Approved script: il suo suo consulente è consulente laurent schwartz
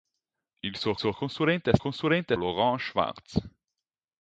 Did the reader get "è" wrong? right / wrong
right